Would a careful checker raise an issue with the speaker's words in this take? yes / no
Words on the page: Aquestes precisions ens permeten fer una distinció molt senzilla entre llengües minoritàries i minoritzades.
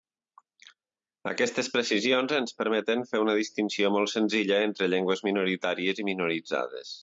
no